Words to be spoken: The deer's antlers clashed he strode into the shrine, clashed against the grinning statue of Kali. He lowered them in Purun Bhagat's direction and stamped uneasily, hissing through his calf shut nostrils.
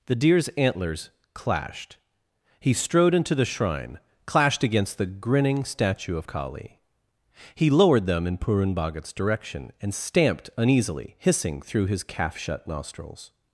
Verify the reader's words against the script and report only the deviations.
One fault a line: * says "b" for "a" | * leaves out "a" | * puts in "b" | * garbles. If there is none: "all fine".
all fine